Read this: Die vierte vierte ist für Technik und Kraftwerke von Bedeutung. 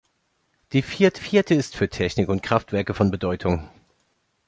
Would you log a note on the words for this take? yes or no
no